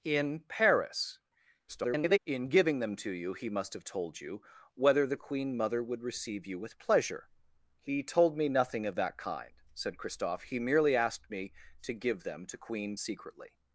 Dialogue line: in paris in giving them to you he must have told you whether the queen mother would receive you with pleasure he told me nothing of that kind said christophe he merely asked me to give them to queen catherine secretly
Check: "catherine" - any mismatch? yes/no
yes